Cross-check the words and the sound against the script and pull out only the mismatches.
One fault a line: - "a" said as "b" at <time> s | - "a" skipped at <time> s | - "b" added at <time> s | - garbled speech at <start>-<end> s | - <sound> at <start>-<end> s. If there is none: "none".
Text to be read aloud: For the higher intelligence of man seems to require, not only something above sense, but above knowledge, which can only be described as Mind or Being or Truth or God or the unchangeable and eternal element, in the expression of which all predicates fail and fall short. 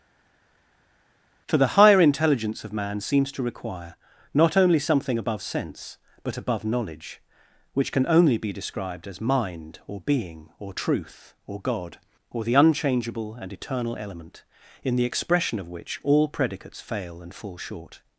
none